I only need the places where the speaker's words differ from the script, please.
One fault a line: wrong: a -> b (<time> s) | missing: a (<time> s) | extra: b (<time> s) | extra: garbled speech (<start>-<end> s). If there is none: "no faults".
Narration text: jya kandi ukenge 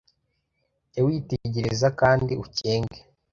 extra: witegereza (1.1 s)